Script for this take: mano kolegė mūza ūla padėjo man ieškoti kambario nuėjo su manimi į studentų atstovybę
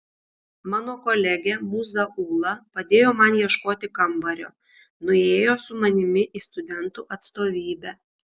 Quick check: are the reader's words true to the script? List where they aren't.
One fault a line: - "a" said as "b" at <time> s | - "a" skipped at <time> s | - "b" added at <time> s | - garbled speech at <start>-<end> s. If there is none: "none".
none